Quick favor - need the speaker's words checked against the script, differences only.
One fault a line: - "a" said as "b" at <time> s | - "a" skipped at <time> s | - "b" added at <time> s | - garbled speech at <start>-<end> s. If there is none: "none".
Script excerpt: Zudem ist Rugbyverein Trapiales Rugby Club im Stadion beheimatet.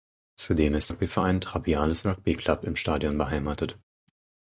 none